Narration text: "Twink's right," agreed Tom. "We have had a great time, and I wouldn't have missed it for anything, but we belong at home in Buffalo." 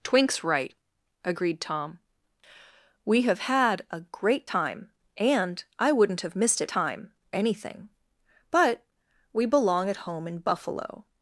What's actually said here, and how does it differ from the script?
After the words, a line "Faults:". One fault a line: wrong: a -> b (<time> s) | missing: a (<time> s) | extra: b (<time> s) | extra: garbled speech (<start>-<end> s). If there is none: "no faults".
"Twink's right," agreed Tom. "We have had a great time, and I wouldn't have missed it time anything, but we belong at home in Buffalo."
Faults:
wrong: for -> time (6.7 s)